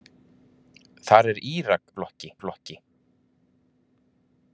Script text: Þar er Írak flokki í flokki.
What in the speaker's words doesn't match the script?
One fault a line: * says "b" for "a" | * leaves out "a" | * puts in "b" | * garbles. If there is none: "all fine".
all fine